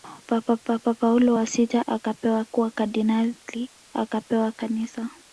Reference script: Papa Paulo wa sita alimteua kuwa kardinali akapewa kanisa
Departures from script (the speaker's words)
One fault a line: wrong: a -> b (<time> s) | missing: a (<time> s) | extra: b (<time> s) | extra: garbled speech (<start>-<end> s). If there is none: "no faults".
extra: papa (0.6 s)
wrong: alimteua -> akapewa (1.9 s)